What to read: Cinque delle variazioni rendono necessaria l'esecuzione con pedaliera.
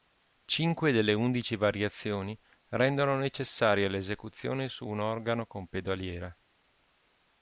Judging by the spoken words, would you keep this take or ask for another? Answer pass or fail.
fail